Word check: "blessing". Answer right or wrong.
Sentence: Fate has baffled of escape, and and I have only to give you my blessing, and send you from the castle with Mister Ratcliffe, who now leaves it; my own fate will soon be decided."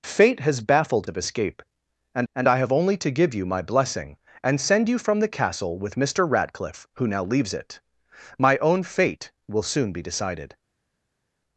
right